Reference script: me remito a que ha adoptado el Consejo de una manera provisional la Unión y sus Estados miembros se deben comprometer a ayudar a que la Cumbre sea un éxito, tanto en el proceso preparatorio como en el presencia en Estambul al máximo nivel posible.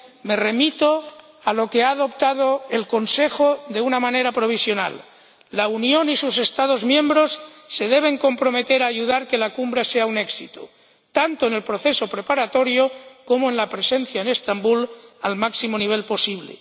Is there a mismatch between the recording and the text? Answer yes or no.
yes